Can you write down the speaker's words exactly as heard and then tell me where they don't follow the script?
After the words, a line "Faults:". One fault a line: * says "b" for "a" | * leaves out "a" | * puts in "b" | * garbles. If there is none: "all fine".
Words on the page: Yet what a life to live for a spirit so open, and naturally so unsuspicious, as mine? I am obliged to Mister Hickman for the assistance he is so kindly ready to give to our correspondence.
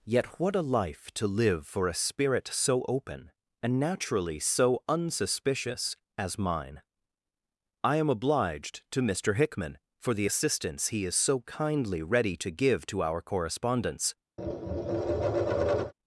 Yet what a life to live for a spirit so open, and naturally so unsuspicious, as mine? I am obliged to Mister Hickman for the assistance he is so kindly ready to give to our correspondence.
Faults:
all fine